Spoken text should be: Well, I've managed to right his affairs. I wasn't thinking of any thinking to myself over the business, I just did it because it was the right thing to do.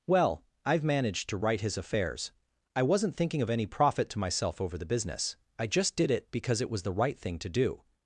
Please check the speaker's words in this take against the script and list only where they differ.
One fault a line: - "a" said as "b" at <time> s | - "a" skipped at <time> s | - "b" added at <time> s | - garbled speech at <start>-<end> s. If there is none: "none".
- "thinking" said as "profit" at 3.6 s